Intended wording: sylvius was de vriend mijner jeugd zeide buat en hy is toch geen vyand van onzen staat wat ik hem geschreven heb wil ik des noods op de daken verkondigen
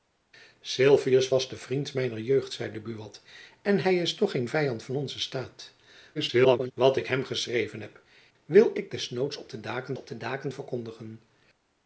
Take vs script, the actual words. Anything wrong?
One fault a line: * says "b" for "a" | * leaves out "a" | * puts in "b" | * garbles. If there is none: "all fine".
* garbles
* puts in "op de daken"